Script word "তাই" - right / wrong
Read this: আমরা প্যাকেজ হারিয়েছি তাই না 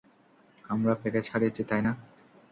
right